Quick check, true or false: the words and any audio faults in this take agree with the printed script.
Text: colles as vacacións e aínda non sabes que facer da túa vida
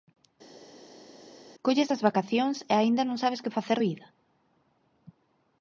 false